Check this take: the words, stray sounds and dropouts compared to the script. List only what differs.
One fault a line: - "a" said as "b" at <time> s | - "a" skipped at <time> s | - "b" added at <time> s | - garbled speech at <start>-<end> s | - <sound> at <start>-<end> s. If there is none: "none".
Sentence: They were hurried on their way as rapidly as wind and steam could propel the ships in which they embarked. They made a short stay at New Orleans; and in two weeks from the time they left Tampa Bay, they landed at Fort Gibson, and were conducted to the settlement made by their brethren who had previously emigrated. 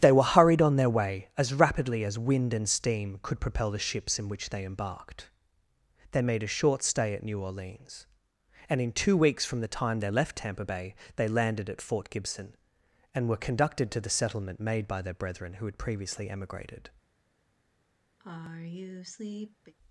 - sigh at 18.2-19.7 s